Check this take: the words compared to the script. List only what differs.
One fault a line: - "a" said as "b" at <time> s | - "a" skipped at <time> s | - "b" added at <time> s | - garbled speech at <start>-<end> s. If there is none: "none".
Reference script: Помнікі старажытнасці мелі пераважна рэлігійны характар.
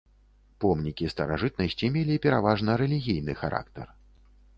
none